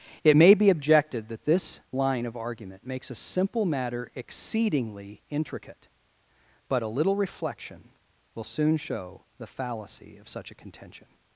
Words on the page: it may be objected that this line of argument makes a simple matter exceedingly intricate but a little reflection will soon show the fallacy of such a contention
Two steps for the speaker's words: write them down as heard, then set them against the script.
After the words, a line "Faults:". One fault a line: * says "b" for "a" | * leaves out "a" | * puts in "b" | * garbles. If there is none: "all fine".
it may be objected that this line of argument makes a simple matter exceedingly intricate but a little reflection will soon show the fallacy of such a contention
Faults:
all fine